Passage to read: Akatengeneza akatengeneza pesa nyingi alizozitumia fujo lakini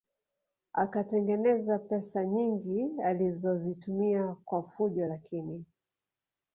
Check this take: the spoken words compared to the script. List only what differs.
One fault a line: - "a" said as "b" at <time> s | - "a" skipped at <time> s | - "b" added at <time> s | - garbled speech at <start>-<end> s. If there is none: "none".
- "akatengeneza" skipped at 1.8 s
- "kwa" added at 4.4 s